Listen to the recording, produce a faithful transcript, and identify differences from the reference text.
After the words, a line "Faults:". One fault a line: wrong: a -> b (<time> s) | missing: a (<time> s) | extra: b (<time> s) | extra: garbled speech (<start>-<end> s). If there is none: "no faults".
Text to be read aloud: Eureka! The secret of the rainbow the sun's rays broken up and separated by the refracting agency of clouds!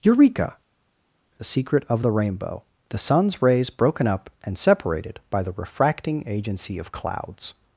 Eureka! The secret of the rainbow the sun's rays broken up and separated by the refracting agency of clouds!
Faults:
no faults